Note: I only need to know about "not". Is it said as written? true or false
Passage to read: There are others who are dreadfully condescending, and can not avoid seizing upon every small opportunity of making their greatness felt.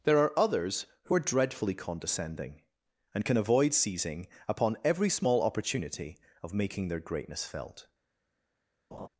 false